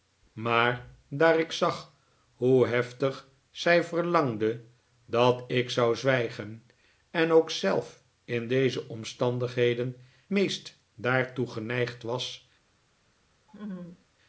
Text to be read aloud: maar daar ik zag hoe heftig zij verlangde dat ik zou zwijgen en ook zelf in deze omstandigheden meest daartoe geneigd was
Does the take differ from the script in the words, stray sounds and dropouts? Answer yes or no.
yes